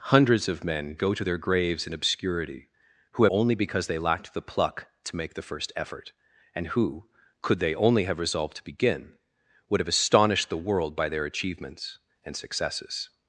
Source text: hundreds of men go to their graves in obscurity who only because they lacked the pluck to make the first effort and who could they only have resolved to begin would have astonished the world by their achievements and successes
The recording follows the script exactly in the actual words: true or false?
true